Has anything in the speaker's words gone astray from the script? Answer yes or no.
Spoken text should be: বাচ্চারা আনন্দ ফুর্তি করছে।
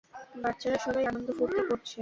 yes